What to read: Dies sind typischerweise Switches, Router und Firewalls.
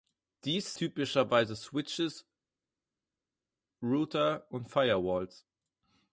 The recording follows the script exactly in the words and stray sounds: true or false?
false